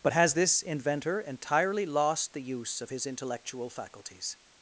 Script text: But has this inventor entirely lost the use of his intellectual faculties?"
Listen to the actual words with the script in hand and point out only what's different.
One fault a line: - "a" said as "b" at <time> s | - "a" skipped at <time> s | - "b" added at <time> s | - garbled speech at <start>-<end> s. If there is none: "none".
none